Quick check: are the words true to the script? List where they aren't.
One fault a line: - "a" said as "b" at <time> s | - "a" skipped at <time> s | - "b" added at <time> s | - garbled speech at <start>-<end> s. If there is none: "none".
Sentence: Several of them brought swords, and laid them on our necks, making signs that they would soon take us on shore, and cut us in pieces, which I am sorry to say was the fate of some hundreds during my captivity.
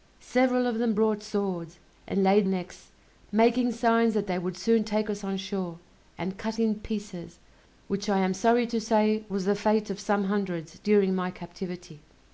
- "them on our" skipped at 2.5 s
- "us" skipped at 6.6 s